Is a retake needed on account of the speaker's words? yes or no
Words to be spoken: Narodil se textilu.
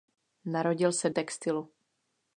no